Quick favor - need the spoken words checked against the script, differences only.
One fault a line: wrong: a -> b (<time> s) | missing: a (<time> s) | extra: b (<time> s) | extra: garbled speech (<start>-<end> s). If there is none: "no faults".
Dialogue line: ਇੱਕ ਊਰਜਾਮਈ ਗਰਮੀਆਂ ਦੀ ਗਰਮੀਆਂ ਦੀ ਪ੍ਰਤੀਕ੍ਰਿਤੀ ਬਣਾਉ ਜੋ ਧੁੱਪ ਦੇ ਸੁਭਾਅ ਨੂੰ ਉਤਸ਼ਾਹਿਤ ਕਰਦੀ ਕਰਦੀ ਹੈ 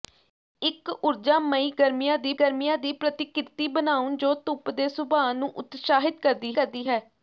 no faults